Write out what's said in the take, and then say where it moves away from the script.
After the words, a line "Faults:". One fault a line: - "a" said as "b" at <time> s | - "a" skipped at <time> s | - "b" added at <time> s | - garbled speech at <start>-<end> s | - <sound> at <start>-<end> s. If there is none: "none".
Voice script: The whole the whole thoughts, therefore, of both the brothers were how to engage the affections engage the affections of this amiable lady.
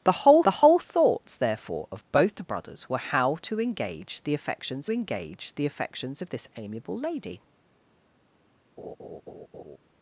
The whole the whole thoughts, therefore, of both the brothers were how to engage the affections engage the affections of this amiable lady.
Faults:
- laugh at 8.8-9.8 s